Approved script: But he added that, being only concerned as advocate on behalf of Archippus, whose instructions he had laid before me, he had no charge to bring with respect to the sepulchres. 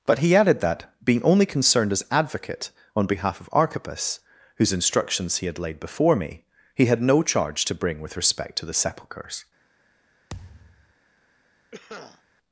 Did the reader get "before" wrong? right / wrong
right